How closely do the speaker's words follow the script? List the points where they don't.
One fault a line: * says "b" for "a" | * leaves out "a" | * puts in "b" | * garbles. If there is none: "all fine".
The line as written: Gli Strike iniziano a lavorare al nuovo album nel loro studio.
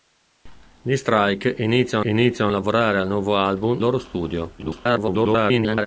* puts in "iniziano"
* leaves out "nel"
* garbles